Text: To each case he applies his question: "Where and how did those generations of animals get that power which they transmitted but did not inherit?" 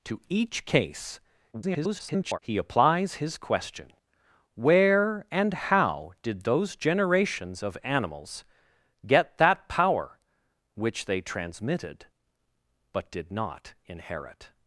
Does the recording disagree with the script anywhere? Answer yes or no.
yes